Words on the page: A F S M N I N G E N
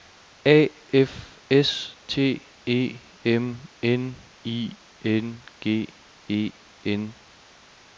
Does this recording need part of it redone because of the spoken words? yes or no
yes